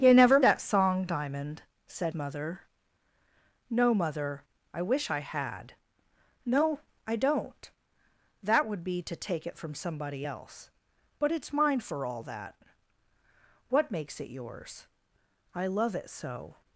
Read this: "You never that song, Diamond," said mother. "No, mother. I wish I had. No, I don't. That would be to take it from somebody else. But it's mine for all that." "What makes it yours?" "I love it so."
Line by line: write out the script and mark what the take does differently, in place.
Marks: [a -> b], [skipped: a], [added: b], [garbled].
"You never that song, Diamond," said mother. "No, mother. I wish I had. No, I don't. That would be to take it from somebody else. But it's mine for all that." "What makes it yours?" "I love it so."